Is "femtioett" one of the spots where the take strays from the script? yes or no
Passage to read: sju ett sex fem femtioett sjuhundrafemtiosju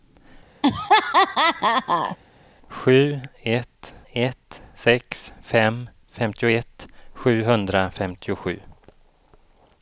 no